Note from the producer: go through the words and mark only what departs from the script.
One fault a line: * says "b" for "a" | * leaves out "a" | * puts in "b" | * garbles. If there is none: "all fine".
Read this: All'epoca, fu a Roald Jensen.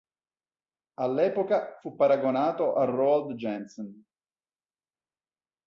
* puts in "paragonato"